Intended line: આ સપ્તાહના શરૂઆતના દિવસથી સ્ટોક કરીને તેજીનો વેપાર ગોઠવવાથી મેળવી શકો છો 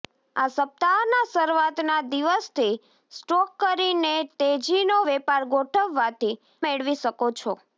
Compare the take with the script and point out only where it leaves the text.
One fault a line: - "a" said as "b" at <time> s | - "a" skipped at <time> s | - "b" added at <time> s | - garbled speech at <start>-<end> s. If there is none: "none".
none